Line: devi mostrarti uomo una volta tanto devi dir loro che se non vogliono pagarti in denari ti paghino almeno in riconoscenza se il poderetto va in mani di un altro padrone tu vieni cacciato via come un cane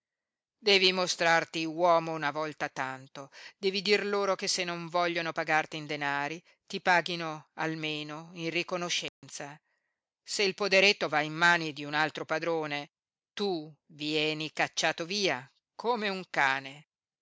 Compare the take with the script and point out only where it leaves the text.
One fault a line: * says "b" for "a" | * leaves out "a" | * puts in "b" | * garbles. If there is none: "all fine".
all fine